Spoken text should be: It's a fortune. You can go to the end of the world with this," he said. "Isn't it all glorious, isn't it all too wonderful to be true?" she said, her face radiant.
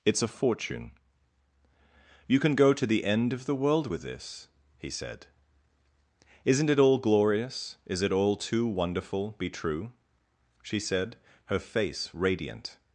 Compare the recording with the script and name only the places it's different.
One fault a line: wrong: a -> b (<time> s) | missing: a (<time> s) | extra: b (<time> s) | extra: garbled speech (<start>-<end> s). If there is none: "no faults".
wrong: isn't -> is (7.8 s)
missing: to (9.3 s)